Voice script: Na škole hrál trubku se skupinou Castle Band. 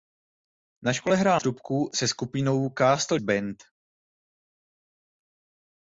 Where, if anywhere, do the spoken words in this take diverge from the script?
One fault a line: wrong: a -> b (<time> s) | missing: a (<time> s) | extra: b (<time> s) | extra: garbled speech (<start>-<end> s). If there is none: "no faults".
no faults